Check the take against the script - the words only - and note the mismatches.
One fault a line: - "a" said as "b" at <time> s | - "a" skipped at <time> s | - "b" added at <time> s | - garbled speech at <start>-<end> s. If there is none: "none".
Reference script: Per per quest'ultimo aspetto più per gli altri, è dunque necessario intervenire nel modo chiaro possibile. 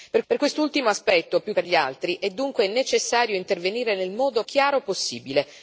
none